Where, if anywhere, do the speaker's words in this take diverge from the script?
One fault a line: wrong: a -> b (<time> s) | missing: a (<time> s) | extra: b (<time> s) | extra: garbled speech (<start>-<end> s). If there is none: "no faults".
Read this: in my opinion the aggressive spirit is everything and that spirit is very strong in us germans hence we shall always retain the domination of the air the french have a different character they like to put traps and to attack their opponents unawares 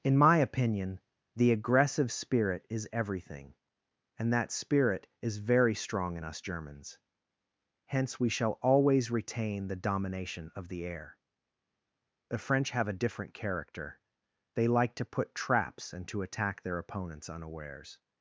no faults